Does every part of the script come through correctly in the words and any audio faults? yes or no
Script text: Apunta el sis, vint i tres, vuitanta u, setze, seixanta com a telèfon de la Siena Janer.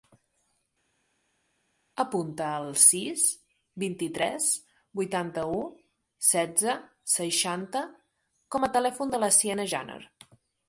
yes